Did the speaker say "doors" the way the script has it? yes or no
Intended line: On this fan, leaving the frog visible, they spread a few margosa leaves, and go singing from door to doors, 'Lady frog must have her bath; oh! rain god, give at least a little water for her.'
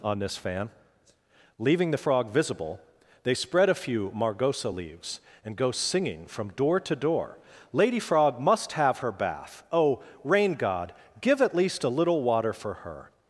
no